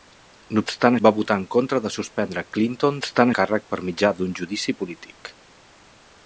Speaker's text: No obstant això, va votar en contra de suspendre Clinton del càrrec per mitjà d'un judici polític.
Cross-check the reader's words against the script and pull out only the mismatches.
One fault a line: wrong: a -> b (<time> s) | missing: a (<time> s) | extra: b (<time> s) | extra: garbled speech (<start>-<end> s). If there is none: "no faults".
missing: això (0.9 s)
wrong: del -> obstant (3.0 s)